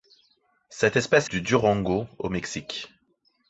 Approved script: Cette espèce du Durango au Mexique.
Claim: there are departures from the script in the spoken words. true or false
false